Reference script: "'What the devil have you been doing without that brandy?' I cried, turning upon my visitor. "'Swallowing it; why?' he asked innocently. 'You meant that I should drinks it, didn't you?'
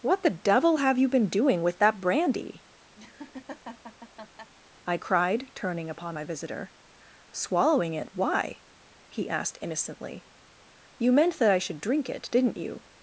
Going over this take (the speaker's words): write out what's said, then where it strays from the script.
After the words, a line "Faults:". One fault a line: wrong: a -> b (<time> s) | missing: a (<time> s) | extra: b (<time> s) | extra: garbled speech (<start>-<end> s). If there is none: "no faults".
"'What the devil have you been doing with that brandy?' I cried, turning upon my visitor. "'Swallowing it; why?' he asked innocently. 'You meant that I should drink it, didn't you?'
Faults:
wrong: without -> with (1.6 s)
wrong: drinks -> drink (11.8 s)